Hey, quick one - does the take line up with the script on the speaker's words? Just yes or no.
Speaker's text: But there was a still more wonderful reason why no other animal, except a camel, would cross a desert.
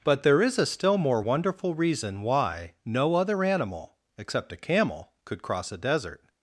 no